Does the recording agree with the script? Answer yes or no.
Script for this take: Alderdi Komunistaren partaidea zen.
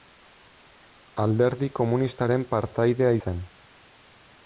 yes